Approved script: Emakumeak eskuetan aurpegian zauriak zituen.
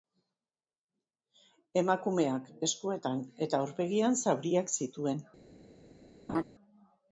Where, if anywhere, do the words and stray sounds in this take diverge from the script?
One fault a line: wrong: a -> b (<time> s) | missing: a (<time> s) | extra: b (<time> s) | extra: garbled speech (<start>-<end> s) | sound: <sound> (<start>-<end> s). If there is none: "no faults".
extra: eta (3.5 s)
sound: laugh (6.3-6.4 s)